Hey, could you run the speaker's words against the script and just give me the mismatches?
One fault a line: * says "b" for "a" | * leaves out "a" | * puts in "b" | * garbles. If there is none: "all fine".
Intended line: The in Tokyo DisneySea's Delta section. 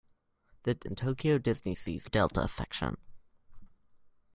all fine